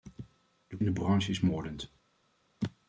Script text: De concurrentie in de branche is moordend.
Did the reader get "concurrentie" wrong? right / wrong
wrong